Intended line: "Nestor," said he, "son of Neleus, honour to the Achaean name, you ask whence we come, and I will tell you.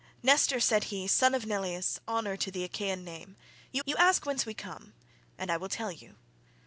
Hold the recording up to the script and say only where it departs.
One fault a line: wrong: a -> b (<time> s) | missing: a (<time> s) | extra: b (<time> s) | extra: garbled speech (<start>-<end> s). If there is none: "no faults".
extra: you (3.8 s)